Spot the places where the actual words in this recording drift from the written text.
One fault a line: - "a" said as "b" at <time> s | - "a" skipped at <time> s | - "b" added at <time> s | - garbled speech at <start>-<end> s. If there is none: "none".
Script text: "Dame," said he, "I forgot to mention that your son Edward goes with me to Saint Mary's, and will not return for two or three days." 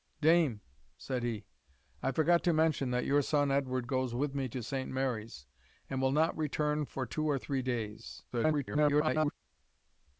- garbled speech at 8.3-9.3 s